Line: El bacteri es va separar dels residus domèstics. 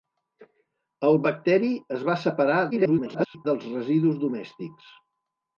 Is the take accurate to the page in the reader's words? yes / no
no